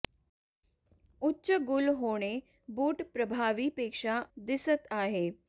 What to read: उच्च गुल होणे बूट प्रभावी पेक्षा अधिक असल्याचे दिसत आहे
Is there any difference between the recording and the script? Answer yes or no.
yes